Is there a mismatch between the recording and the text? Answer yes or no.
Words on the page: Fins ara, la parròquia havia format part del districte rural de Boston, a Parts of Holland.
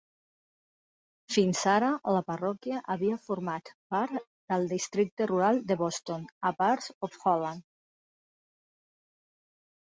no